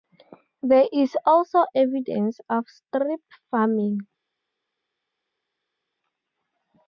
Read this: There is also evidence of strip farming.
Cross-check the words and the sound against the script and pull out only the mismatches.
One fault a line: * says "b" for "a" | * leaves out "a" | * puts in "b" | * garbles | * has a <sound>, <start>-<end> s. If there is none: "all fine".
all fine